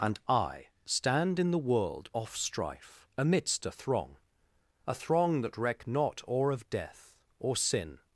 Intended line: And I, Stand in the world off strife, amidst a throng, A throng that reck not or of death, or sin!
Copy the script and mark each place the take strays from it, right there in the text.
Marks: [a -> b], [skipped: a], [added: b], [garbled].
And I, Stand in the world off strife, amidst a throng, A throng that reck not or of death, or sin!